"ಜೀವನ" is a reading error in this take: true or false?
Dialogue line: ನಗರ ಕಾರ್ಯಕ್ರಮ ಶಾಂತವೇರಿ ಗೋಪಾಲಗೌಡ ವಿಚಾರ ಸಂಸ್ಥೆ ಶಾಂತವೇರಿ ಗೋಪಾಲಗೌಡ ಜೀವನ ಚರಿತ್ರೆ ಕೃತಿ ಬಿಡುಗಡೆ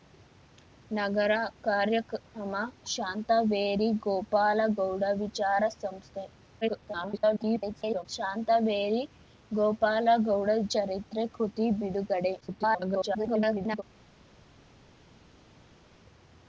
true